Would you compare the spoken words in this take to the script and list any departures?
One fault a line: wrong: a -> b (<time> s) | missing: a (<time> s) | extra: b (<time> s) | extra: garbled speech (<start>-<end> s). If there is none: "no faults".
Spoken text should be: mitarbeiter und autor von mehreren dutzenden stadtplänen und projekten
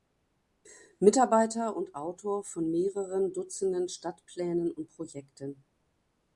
no faults